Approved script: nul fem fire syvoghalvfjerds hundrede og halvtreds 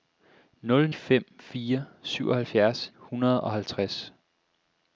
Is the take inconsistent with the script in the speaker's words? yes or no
no